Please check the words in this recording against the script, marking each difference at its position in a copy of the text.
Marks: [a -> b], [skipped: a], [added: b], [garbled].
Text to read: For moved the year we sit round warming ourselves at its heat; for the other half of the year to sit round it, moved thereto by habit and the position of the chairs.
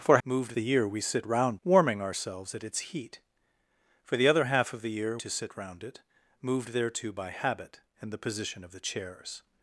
For moved the year we sit round warming ourselves at its heat; for the other half of the year to sit round it, moved thereto by habit and the position of the chairs.